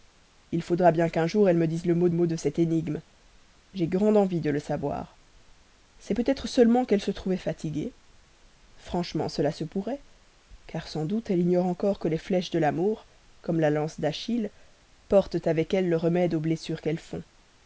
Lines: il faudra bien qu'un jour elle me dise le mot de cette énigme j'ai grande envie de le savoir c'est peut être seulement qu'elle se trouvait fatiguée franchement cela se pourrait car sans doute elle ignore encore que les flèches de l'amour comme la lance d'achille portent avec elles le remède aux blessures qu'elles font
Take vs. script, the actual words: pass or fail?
fail